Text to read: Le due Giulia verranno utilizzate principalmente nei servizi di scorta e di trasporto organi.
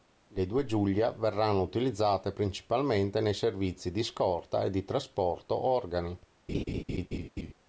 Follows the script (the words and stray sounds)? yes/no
no